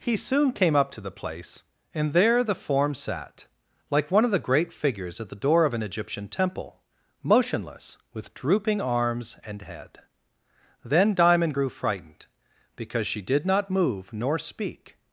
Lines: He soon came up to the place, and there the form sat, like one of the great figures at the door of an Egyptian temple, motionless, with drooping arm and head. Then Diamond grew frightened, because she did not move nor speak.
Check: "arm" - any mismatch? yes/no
yes